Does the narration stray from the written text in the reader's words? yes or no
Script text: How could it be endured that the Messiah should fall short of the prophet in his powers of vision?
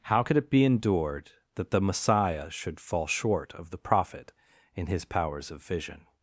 no